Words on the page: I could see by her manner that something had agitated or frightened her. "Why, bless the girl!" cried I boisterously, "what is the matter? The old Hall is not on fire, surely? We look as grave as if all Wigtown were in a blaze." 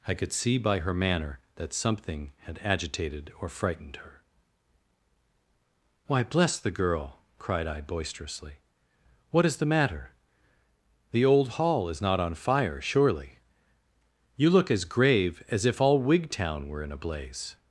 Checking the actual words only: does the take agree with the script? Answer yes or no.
no